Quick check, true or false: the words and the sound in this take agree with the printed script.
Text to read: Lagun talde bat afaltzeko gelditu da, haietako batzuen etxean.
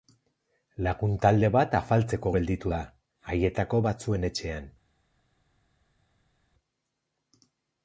true